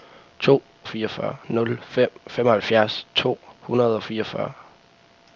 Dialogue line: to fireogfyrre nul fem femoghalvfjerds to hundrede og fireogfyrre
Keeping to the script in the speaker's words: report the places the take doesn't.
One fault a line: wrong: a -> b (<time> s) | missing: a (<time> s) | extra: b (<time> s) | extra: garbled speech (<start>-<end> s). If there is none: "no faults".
no faults